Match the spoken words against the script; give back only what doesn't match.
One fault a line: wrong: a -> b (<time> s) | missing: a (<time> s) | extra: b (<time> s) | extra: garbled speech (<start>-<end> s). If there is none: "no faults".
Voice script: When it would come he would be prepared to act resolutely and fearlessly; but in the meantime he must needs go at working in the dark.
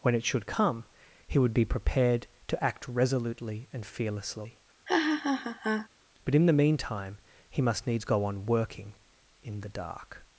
wrong: would -> should (0.2 s)
wrong: at -> on (8.2 s)